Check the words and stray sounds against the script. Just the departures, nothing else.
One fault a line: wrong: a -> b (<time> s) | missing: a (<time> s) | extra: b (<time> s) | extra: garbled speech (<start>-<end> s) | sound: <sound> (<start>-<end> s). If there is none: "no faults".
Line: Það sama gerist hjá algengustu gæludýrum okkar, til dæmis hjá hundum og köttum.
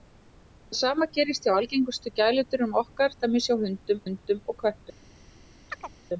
missing: til (3.2 s)
extra: hundum (4.0 s)
sound: chirp (5.7-5.9 s)